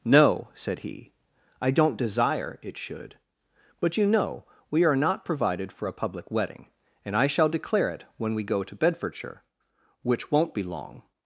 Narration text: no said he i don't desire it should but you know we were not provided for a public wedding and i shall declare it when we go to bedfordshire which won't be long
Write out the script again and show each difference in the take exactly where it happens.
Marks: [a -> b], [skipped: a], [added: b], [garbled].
no said he i don't desire it should but you know we [were -> are] not provided for a public wedding and i shall declare it when we go to bedfordshire which won't be long